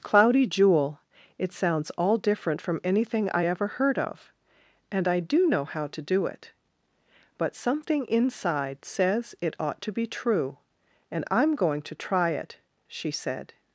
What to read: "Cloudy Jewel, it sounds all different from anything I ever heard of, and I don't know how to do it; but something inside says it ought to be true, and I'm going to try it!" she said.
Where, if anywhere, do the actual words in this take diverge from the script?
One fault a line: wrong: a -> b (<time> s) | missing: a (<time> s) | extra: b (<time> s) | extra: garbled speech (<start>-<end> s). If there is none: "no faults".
wrong: don't -> do (5.2 s)